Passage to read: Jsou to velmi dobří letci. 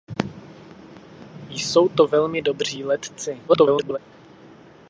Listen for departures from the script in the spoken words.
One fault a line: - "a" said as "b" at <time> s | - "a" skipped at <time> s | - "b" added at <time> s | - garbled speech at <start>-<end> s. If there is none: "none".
- garbled speech at 3.5-4.0 s